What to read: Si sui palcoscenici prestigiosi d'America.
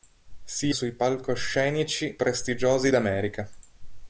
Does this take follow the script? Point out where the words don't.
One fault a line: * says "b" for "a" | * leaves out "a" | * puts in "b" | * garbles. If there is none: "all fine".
all fine